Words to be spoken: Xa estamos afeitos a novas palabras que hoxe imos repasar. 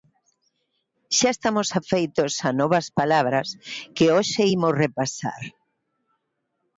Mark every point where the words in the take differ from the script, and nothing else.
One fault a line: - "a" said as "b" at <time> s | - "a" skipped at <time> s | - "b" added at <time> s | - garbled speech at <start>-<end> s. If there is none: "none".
none